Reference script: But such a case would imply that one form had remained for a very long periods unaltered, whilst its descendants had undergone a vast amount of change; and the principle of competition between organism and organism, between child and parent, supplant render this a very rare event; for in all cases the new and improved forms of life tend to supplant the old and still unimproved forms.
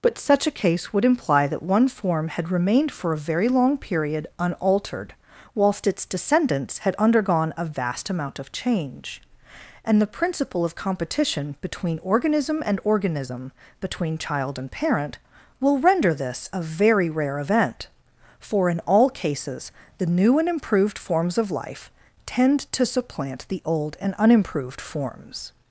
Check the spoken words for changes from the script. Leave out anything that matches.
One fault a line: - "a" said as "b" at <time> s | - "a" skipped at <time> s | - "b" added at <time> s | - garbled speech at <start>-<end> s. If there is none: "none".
- "periods" said as "period" at 3.8 s
- "supplant" said as "will" at 15.6 s
- "still" skipped at 24.1 s